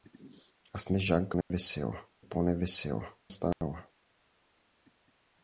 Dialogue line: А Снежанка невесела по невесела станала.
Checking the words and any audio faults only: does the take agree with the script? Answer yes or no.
no